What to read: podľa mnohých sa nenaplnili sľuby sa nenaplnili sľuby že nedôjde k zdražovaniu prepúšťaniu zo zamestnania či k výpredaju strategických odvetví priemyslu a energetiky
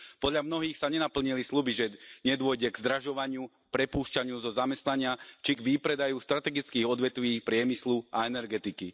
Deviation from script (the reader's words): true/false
true